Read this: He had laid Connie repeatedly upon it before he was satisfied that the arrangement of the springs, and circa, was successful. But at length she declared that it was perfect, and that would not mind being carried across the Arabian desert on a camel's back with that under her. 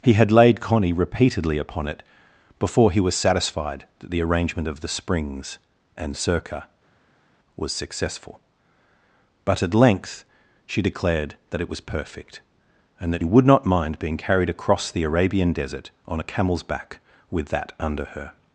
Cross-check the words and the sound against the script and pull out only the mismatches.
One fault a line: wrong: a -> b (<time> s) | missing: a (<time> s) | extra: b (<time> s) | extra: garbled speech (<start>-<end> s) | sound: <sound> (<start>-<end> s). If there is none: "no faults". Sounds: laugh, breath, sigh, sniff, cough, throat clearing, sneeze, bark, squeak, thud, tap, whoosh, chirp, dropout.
no faults